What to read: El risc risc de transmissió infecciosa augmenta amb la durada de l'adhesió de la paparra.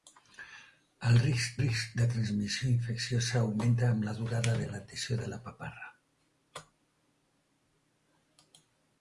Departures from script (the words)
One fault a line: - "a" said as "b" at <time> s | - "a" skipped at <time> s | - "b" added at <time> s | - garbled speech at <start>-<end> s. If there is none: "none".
none